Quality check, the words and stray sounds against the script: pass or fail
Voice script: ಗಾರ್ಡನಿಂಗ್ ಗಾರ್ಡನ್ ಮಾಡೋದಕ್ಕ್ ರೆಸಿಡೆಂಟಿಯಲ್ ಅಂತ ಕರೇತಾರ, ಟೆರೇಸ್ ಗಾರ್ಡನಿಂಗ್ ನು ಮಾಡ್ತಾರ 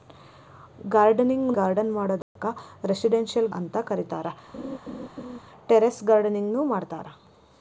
fail